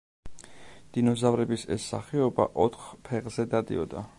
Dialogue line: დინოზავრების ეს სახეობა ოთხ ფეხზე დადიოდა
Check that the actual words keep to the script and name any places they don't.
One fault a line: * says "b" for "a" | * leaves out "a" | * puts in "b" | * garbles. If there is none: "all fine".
all fine